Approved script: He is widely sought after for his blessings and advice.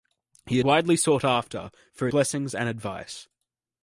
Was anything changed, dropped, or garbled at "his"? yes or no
yes